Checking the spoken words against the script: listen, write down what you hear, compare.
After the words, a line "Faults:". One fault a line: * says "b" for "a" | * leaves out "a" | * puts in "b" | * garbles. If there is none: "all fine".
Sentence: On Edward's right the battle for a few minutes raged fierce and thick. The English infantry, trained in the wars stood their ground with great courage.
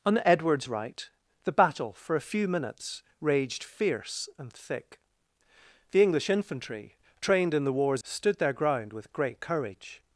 On Edward's right the battle for a few minutes raged fierce and thick. The English infantry, trained in the wars stood their ground with great courage.
Faults:
all fine